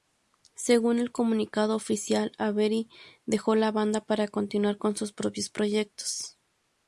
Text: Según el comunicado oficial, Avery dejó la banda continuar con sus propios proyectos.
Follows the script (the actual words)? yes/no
no